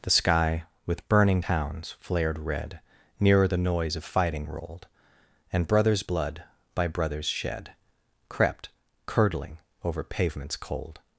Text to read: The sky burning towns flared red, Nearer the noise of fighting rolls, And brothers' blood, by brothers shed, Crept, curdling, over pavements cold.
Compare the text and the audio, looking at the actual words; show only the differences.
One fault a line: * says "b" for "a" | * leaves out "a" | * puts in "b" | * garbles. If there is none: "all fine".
* puts in "with"
* says "rolled" for "rolls"